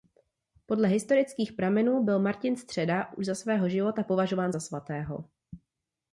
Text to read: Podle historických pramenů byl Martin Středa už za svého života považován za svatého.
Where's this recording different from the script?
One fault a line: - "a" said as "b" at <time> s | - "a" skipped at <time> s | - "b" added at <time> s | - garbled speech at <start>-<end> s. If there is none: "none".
none